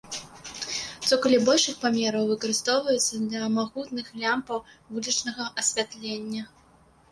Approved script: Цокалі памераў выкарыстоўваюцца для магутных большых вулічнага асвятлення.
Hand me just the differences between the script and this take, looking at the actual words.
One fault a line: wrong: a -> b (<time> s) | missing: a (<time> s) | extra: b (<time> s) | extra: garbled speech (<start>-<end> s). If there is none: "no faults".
extra: большых (1.5 s)
wrong: большых -> лямпаў (4.2 s)